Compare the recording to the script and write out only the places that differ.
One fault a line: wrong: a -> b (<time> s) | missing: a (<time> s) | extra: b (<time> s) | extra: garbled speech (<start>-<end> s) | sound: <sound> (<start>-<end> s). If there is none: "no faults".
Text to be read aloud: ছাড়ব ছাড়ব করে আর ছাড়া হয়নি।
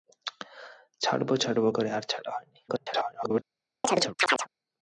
extra: garbled speech (2.7-3.4 s)
sound: chirp (3.8-4.5 s)